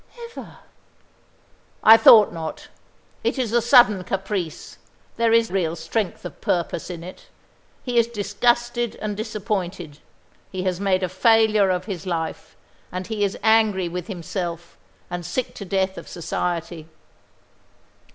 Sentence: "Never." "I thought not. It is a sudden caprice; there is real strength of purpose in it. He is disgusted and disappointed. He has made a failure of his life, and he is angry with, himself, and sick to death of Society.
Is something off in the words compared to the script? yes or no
no